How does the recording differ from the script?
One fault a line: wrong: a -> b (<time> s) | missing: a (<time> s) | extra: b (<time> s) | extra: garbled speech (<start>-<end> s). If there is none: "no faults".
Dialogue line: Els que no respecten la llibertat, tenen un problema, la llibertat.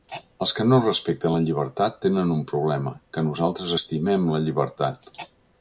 extra: que nosaltres estimem (3.2 s)